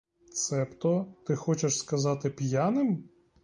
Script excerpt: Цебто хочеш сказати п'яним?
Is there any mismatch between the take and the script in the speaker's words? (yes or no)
yes